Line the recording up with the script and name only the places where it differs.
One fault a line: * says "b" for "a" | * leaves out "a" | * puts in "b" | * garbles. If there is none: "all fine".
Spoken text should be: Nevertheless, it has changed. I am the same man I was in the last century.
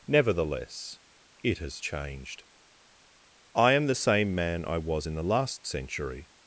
all fine